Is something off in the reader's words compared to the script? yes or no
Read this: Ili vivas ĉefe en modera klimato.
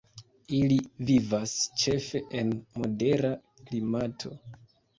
no